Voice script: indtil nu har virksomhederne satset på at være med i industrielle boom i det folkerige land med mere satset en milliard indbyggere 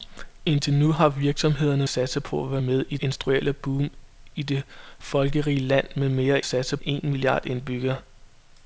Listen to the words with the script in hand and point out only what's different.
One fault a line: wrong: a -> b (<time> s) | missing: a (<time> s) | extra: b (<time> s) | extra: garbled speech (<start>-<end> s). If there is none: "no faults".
no faults